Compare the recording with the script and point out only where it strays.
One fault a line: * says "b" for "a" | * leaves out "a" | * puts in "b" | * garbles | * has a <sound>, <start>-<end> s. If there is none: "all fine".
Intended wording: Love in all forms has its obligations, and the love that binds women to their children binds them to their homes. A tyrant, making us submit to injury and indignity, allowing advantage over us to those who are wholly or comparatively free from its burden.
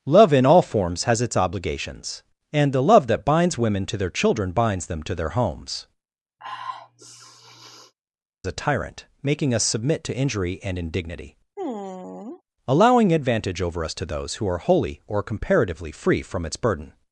* has a sniff, 6.4-7.9 s
* has a sigh, 11.6-12.4 s